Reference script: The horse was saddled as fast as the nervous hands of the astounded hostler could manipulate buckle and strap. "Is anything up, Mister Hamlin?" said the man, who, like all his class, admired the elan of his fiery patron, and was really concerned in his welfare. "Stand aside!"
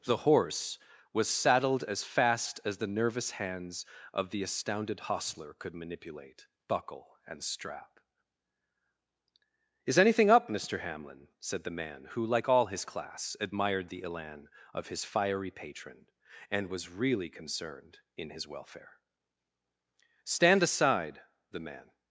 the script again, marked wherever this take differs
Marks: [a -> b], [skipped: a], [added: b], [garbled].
The horse was saddled as fast as the nervous hands of the astounded hostler could manipulate buckle and strap. "Is anything up, Mister Hamlin?" said the man, who, like all his class, admired the elan of his fiery patron, and was really concerned in his welfare. "Stand aside!" [added: The man]